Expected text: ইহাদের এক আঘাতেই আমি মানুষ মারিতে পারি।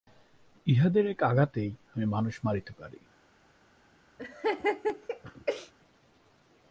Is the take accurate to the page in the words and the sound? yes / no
no